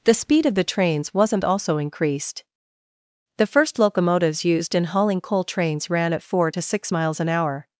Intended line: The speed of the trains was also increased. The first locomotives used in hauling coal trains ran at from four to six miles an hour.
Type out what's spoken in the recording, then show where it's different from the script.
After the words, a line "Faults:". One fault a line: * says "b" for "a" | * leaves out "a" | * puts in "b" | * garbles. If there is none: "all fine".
The speed of the trains wasn't also increased. The first locomotives used in hauling coal trains ran at four to six miles an hour.
Faults:
* says "wasn't" for "was"
* leaves out "from"